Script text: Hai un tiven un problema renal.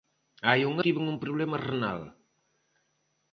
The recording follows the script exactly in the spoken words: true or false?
true